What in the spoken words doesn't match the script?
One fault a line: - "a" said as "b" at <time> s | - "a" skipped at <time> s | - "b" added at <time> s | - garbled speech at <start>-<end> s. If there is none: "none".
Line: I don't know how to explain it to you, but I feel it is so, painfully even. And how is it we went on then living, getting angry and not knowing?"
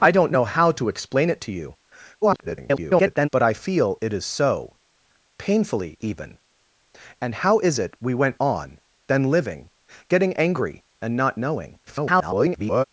- garbled speech at 2.2-3.3 s
- garbled speech at 11.9-12.8 s